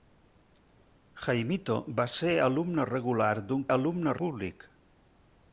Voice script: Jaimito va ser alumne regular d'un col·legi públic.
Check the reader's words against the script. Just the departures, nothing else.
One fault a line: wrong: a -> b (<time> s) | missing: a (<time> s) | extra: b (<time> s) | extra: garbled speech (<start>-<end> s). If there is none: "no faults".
wrong: col·legi -> alumne (3.8 s)